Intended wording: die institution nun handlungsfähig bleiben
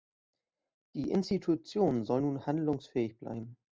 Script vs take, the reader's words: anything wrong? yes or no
yes